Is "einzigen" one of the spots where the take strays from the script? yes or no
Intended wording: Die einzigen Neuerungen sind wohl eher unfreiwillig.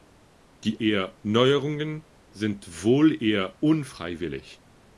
yes